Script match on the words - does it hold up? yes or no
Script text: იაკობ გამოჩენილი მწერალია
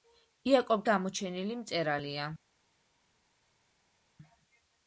yes